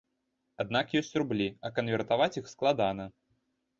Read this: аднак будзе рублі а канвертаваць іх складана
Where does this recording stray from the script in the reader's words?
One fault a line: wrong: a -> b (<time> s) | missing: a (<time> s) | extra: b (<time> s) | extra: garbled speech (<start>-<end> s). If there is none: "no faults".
wrong: будзе -> ёсць (1.0 s)